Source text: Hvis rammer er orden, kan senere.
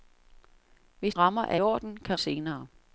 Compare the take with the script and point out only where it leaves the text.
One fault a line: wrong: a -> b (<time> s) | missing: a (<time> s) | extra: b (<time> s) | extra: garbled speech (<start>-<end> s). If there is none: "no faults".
no faults